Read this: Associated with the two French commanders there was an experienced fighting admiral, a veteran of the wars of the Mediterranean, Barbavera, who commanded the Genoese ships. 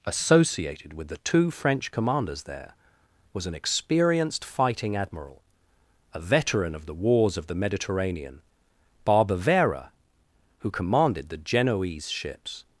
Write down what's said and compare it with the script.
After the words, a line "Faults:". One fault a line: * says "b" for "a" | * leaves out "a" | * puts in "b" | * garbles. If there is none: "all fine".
Associated with the two French commanders there was an experienced fighting admiral, a veteran of the wars of the Mediterranean, Barbavera, who commanded the Genoese ships.
Faults:
all fine